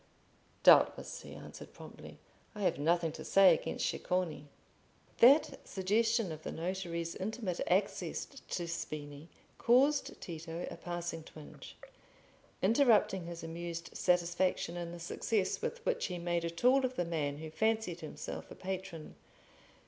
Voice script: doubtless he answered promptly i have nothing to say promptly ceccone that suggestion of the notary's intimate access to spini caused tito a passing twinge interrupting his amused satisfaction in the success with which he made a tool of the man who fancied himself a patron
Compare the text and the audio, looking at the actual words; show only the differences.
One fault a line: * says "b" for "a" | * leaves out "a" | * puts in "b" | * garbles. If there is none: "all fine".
* says "against" for "promptly"